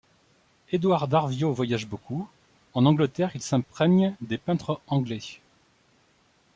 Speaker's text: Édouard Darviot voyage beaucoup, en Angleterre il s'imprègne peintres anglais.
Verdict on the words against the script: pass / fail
fail